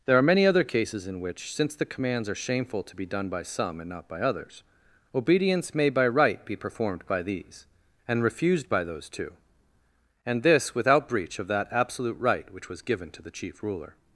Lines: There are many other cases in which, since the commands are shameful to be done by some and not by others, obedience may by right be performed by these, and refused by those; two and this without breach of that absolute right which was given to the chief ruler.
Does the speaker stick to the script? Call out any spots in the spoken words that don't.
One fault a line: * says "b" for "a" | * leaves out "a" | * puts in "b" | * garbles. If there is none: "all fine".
all fine